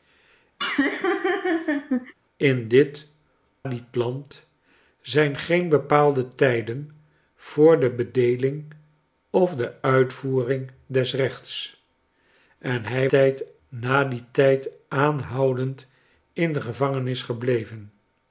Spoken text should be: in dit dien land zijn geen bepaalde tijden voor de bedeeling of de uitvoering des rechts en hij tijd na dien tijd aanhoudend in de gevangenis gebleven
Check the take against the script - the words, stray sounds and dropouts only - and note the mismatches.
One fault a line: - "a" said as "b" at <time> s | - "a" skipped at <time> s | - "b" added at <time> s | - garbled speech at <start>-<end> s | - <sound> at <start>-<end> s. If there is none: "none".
- laugh at 0.6-2.1 s